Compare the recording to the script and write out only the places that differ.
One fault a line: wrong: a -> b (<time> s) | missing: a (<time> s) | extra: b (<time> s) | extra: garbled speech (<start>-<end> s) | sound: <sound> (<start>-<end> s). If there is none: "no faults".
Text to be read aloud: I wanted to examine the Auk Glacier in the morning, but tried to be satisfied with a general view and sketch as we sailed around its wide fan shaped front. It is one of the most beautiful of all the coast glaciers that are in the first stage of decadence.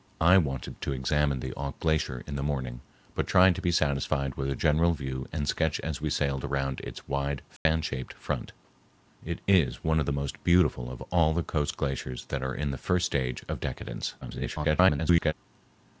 sound: dropout (7.6-7.7 s)
extra: garbled speech (14.2-15.3 s)